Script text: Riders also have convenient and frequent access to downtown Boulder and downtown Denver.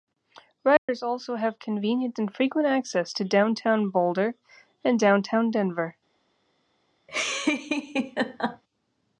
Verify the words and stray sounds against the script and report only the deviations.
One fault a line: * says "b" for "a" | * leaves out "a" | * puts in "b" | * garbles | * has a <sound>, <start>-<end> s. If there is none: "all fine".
* has a dropout, 0.8-0.9 s
* has a laugh, 7.1-8.6 s